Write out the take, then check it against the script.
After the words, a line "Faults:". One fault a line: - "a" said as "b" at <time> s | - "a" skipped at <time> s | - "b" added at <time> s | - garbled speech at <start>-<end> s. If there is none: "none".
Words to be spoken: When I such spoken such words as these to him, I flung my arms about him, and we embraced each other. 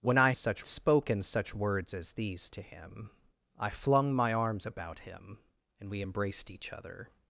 When I such spoken such words as these to him, I flung my arms about him, and we embraced each other.
Faults:
none